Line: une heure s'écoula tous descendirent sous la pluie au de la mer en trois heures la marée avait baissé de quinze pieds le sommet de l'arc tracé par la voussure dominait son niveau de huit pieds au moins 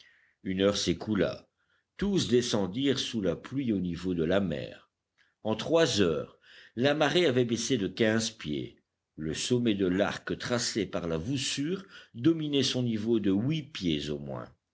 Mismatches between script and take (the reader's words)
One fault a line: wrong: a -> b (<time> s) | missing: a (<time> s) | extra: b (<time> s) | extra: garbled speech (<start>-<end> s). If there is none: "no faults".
extra: niveau (3.8 s)